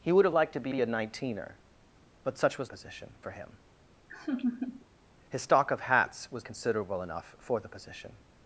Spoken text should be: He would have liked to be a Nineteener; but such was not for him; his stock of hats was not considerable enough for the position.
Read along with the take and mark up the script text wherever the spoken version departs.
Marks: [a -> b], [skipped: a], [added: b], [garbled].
He would have liked to be [added: be] a Nineteener; but such was [not -> position] for him; his stock of hats was [skipped: not] considerable enough for the position.